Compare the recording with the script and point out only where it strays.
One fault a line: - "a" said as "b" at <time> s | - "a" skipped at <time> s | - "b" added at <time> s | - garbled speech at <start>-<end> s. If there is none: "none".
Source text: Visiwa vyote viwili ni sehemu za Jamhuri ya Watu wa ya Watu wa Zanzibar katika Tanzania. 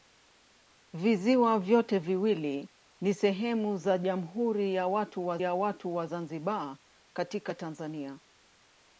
none